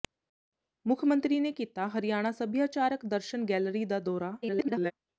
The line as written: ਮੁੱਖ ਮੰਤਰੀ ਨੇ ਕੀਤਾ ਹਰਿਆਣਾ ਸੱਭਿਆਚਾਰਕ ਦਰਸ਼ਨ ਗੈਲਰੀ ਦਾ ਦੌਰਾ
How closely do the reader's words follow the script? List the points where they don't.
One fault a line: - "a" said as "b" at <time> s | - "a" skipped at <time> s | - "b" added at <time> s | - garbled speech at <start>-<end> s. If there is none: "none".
- garbled speech at 4.4-4.9 s